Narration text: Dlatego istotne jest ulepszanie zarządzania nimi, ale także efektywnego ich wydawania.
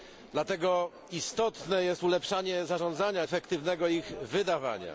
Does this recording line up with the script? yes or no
no